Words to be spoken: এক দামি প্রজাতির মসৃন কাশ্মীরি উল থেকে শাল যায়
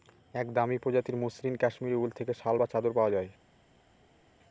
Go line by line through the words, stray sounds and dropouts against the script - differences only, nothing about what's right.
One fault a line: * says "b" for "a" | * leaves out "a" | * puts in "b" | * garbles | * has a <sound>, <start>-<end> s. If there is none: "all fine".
* puts in "বা চাদর পাওয়া"